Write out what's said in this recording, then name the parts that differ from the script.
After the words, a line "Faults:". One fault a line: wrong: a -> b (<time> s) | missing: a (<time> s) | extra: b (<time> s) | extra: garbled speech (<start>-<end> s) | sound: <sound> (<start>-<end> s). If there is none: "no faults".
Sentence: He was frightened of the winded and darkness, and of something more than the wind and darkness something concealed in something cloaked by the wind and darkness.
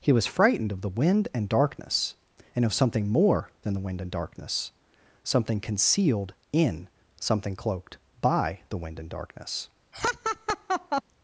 He was frightened of the wind and darkness, and of something more than the wind and darkness something concealed in something cloaked by the wind and darkness.
Faults:
wrong: winded -> wind (0.9 s)
sound: laugh (9.9-11.0 s)